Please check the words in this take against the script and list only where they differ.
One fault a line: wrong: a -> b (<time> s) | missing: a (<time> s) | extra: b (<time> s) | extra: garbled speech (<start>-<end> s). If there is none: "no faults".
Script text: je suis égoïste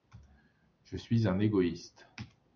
extra: un (1.3 s)